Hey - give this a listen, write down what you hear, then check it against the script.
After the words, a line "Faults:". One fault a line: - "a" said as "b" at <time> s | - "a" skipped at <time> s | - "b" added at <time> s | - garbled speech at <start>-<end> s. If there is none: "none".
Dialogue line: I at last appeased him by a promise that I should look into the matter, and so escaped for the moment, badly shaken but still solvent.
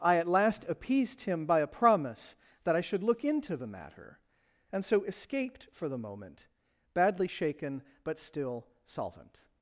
I at last appeased him by a promise that I should look into the matter, and so escaped for the moment, badly shaken but still solvent.
Faults:
none